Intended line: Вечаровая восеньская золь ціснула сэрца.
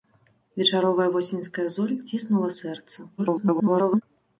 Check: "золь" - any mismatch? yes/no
no